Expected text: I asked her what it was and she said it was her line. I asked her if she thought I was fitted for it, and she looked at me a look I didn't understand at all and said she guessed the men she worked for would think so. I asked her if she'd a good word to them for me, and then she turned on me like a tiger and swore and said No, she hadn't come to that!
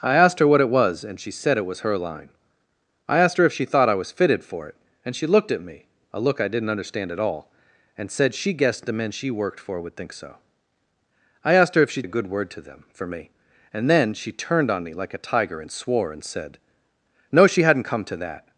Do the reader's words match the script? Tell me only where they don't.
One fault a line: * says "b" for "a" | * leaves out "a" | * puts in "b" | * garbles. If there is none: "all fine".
all fine